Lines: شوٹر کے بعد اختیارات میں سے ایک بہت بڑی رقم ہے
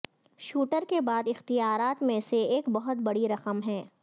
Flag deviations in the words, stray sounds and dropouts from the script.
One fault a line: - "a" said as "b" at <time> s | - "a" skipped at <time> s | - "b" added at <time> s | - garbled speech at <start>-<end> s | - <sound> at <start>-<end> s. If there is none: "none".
none